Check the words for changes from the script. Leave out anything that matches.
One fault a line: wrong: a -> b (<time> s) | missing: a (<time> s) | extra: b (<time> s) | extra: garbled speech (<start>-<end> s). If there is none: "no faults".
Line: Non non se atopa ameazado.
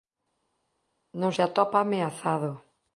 missing: non (1.3 s)